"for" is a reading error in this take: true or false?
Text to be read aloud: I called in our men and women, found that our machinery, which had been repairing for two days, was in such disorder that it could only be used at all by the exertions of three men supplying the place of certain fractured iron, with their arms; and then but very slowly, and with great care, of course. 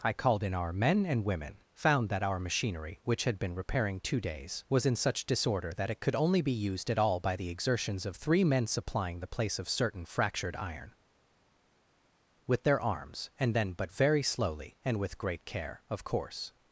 true